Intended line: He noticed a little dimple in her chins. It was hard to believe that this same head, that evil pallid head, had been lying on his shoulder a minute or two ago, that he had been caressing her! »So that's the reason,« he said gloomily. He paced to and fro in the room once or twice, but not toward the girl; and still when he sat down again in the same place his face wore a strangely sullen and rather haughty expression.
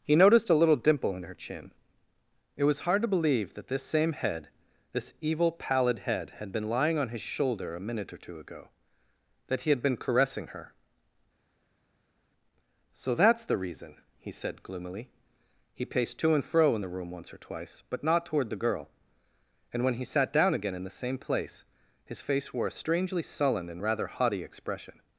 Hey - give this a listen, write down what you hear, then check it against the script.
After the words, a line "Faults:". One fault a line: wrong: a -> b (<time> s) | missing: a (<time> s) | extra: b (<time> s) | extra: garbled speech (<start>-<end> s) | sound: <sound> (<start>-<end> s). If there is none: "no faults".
He noticed a little dimple in her chin. It was hard to believe that this same head, this evil pallid head, had been lying on his shoulder a minute or two ago, that he had been caressing her! »So that's the reason,« he said gloomily. He paced to and fro in the room once or twice, but not toward the girl; and when he sat down again in the same place his face wore a strangely sullen and rather haughty expression.
Faults:
wrong: chins -> chin (1.4 s)
wrong: that -> this (4.9 s)
missing: still (19.8 s)